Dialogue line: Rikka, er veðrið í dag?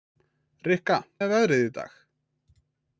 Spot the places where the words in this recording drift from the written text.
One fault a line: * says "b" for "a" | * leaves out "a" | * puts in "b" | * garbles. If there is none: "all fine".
all fine